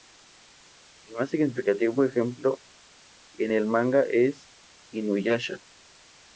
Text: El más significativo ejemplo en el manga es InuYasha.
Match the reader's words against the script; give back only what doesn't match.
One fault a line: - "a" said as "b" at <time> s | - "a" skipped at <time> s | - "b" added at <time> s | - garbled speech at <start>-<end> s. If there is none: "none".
none